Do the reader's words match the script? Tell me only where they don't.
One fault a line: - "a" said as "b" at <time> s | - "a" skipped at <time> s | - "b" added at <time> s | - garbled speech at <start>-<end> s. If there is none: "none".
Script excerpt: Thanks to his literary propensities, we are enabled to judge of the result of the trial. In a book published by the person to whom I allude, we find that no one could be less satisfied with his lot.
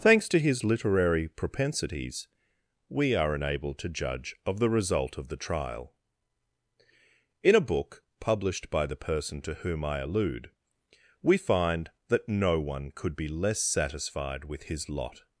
none